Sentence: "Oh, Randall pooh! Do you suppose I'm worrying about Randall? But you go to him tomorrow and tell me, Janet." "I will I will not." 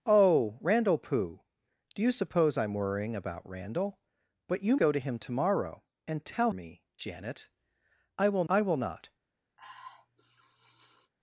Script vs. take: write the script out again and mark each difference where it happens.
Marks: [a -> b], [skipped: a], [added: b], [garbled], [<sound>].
"Oh, Randall pooh! Do you suppose I'm worrying about Randall? But you go to him tomorrow and tell me, Janet." "I will I will not." [sniff]